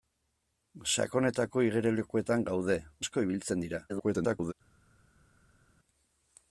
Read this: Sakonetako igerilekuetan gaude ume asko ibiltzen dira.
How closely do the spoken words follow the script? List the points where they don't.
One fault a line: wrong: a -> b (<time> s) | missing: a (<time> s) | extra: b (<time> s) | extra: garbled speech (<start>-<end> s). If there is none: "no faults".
missing: ume (2.8 s)
extra: garbled speech (3.9-4.5 s)